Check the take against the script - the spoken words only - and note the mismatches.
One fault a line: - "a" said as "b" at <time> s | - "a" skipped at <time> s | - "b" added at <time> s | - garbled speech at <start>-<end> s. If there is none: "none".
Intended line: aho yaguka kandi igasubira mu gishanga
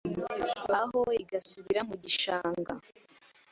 - "yaguka kandi" skipped at 1.0 s